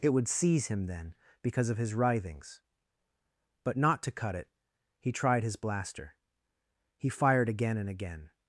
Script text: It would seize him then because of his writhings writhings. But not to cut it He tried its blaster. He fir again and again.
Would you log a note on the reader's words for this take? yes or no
yes